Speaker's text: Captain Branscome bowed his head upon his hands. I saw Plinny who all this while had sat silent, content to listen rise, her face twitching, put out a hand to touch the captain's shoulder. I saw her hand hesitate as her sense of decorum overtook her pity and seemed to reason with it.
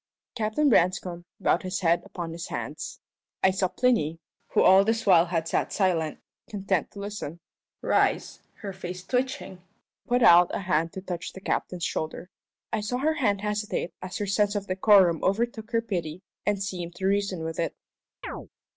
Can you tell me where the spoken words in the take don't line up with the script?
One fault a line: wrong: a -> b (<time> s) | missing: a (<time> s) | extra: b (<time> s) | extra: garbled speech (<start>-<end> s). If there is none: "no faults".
no faults